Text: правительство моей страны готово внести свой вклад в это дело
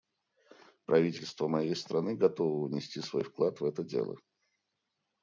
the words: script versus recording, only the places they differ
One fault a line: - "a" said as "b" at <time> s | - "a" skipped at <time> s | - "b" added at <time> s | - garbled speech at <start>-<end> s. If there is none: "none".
none